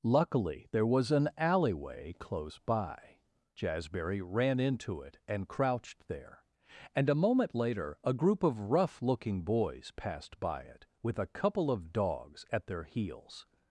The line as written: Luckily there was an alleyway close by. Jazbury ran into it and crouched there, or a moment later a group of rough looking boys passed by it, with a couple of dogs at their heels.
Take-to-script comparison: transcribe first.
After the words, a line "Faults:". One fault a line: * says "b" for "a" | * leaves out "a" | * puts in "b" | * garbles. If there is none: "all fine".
Luckily there was an alleyway close by. Jazbury ran into it and crouched there, and a moment later a group of rough looking boys passed by it, with a couple of dogs at their heels.
Faults:
* says "and" for "or"